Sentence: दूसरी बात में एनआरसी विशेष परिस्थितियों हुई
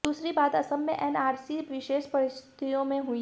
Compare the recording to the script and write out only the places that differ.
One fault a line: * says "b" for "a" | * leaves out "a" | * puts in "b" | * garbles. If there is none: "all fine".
* puts in "असम"
* puts in "में"